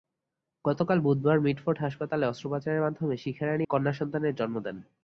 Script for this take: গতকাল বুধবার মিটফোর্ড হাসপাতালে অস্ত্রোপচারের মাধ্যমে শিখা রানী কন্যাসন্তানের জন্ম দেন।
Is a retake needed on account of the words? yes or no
no